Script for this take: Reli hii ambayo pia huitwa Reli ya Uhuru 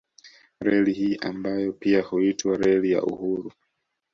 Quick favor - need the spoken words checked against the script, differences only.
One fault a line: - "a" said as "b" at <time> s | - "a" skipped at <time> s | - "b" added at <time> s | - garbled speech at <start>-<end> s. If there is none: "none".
none